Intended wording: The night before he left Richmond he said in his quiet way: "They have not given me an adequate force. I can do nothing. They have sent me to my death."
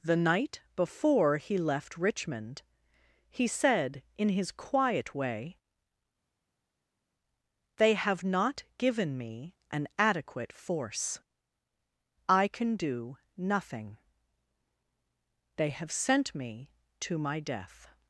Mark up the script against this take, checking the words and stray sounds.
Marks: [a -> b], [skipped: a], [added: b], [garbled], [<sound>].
The night before he left Richmond he said in his quiet way: "They have not given me an adequate force. I can do nothing. They have sent me to my death."